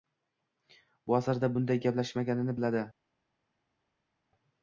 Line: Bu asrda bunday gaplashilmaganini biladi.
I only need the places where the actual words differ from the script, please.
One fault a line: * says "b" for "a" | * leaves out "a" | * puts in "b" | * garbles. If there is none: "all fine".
all fine